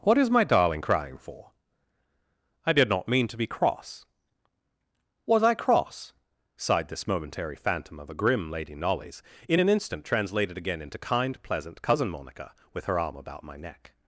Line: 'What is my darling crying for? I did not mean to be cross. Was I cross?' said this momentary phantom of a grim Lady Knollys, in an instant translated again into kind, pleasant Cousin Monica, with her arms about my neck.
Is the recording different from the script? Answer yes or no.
yes